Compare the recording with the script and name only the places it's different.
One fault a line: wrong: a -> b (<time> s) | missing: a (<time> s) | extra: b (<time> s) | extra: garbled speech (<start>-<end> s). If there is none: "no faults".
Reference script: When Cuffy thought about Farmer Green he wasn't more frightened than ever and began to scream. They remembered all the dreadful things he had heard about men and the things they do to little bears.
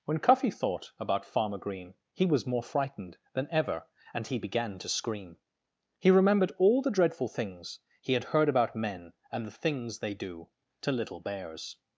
wrong: wasn't -> was (2.2 s)
extra: he (4.3 s)
wrong: They -> He (6.0 s)